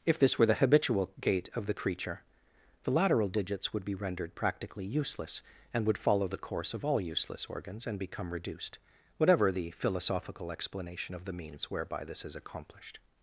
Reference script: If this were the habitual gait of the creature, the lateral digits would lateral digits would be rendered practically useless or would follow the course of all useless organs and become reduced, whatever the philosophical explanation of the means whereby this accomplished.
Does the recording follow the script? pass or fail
fail